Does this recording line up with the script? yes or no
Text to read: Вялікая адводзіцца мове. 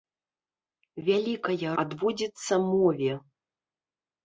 yes